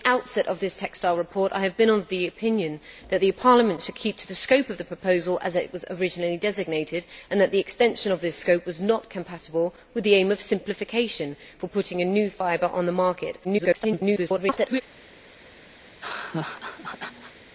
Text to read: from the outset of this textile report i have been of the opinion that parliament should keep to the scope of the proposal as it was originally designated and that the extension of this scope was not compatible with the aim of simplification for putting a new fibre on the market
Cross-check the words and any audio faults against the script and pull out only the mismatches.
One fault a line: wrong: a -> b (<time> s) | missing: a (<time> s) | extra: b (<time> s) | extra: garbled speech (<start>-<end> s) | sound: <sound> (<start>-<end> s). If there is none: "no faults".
extra: garbled speech (13.4-14.8 s)
sound: laugh (15.8-17.4 s)